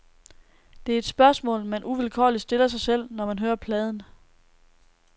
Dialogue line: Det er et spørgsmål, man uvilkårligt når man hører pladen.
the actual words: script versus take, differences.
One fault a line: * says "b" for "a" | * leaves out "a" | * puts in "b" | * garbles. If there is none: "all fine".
* puts in "stiller sig selv"